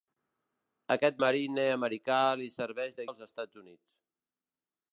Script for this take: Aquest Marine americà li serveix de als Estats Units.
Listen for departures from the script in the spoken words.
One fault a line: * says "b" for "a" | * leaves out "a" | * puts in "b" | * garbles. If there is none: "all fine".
all fine